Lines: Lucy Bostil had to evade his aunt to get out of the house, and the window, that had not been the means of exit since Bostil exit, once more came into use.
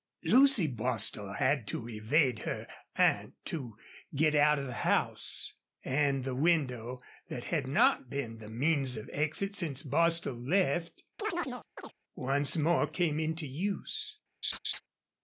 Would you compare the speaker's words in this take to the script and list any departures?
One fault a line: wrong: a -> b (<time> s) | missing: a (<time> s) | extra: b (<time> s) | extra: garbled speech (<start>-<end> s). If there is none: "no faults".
wrong: his -> her (2.4 s)
wrong: exit -> left (10.4 s)